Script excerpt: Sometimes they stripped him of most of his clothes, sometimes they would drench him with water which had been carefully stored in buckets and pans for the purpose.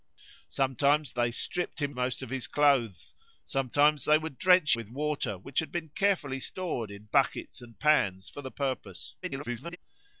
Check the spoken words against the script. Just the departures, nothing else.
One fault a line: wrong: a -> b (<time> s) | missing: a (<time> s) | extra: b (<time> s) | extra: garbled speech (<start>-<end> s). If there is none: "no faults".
missing: of (1.9 s)
missing: him (4.8 s)
extra: garbled speech (9.2-9.8 s)